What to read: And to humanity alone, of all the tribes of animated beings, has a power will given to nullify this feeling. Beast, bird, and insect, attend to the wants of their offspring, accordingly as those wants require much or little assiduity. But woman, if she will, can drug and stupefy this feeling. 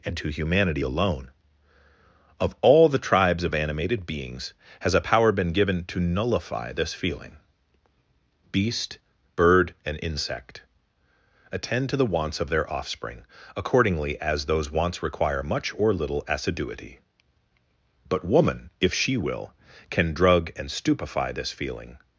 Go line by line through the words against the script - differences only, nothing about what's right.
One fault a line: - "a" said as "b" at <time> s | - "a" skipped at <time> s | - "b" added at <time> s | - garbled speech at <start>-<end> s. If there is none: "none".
- "will" said as "been" at 5.3 s